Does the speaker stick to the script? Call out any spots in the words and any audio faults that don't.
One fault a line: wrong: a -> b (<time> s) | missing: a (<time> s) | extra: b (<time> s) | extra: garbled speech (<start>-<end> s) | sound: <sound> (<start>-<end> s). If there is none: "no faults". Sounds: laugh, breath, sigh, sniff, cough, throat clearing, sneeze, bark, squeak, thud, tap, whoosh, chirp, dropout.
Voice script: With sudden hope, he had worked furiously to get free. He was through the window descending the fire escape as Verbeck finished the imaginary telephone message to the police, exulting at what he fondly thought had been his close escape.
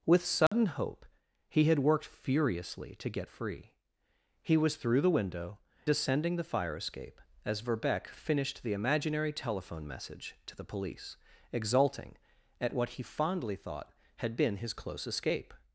sound: dropout (0.5-0.5 s)